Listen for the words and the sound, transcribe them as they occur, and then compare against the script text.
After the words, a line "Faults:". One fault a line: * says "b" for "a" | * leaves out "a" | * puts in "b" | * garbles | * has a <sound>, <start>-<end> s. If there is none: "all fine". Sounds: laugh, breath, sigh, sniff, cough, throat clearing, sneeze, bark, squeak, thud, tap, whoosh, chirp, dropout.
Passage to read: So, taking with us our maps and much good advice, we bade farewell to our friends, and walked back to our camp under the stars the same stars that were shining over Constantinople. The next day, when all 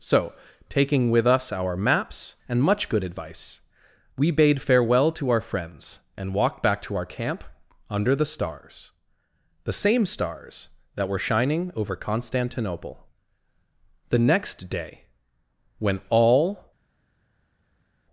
So, taking with us our maps and much good advice, we bade farewell to our friends, and walked back to our camp under the stars the same stars that were shining over Constantinople. The next day, when all
Faults:
all fine